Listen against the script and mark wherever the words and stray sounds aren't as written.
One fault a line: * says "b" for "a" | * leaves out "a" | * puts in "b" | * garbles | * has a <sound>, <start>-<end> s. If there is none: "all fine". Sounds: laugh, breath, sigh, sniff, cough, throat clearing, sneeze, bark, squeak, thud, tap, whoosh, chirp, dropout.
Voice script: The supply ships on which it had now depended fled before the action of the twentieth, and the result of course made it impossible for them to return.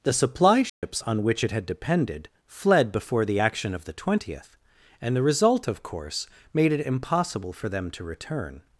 * has a dropout, 0.7-0.8 s
* leaves out "now"